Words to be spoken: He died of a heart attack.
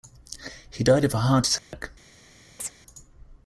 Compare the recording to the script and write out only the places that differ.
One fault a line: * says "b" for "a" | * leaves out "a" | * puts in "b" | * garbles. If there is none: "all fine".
all fine